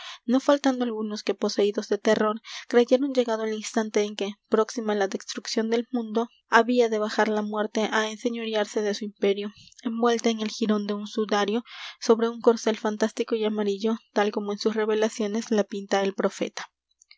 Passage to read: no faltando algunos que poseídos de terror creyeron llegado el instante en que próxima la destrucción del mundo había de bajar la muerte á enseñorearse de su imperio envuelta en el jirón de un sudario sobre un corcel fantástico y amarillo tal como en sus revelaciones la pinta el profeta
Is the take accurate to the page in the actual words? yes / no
yes